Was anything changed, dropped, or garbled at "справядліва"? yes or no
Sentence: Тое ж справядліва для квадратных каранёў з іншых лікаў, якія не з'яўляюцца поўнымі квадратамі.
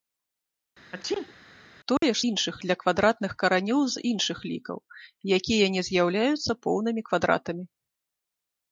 yes